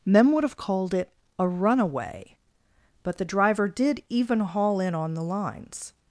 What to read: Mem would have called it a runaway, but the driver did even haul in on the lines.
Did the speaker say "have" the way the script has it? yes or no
yes